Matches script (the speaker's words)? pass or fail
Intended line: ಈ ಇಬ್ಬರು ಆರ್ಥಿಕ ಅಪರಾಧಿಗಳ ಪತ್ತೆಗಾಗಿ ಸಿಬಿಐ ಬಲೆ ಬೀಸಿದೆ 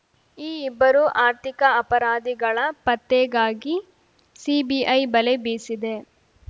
pass